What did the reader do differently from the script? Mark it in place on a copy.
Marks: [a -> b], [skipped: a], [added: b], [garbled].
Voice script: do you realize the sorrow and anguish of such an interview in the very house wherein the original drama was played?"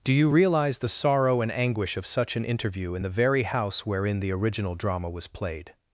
do you realize the sorrow and anguish of such an interview in the very house wherein the original drama was played?"